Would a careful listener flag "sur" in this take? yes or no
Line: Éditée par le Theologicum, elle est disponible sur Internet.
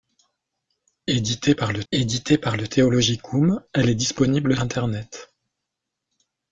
yes